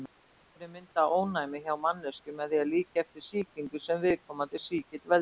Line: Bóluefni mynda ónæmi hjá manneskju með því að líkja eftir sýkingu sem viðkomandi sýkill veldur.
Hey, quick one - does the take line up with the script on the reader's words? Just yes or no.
yes